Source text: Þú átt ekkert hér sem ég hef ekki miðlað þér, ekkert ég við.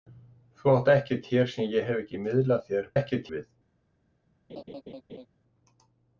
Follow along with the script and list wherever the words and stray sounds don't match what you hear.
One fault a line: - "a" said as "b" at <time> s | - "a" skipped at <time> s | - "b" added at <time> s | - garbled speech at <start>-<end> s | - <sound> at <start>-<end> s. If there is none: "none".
- laugh at 4.5-5.3 s